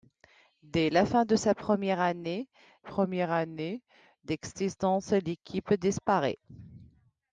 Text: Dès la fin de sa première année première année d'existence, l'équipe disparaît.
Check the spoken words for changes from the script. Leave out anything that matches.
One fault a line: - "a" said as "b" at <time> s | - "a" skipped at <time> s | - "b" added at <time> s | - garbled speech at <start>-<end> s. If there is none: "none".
none